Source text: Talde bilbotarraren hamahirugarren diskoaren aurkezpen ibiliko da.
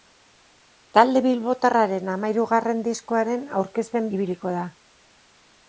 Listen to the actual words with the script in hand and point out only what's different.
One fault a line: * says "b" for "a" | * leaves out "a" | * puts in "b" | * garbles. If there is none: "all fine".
all fine